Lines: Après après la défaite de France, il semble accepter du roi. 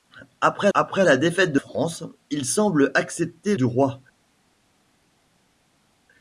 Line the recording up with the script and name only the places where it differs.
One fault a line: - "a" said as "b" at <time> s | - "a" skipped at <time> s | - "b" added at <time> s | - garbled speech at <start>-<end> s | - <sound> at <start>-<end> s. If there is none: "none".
none